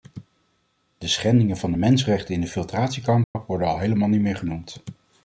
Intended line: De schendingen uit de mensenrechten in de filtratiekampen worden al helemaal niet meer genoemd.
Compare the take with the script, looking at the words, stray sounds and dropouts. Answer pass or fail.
fail